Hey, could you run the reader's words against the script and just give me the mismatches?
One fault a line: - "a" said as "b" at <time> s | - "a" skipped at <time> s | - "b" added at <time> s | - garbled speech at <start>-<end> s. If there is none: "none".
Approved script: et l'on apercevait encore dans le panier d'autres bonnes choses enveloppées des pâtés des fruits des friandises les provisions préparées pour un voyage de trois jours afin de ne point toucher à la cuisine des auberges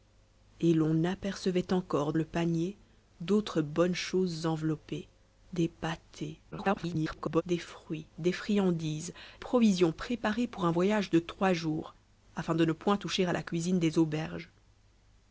- "dans" skipped at 2.1 s
- garbled speech at 6.5-7.4 s
- "les" skipped at 9.1 s